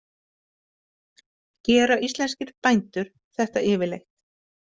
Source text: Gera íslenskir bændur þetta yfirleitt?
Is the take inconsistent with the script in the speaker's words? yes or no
no